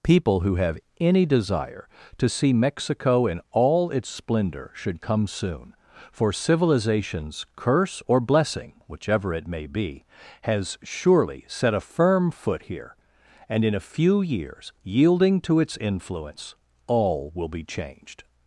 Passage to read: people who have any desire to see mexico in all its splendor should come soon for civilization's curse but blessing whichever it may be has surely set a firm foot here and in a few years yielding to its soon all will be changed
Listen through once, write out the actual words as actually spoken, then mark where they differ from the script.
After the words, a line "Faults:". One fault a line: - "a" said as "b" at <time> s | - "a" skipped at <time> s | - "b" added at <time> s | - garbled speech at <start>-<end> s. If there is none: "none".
people who have any desire to see mexico in all its splendor should come soon for civilization's curse or blessing whichever it may be has surely set a firm foot here and in a few years yielding to its influence all will be changed
Faults:
- "but" said as "or" at 8.1 s
- "soon" said as "influence" at 15.8 s